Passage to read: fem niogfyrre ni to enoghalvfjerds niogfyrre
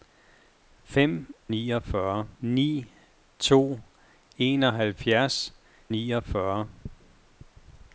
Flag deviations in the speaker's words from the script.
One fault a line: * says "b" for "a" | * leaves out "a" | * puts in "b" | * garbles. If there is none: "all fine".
all fine